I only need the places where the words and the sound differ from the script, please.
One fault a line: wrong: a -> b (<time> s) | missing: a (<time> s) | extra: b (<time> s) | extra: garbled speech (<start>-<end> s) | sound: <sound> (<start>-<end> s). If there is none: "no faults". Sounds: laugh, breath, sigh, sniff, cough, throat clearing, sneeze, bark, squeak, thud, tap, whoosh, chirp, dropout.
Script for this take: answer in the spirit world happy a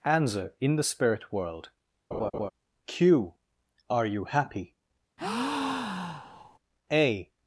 sound: laugh (2.1-2.5 s)
extra: q are you (2.8 s)
sound: breath (5.2-6.6 s)